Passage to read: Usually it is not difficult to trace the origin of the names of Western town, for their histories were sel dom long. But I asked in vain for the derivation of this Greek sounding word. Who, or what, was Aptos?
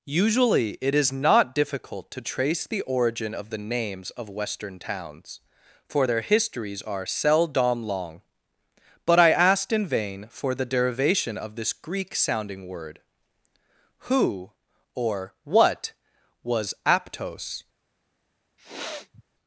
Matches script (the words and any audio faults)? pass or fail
fail